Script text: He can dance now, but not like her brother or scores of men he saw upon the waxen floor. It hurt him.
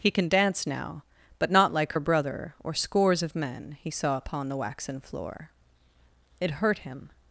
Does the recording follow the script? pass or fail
pass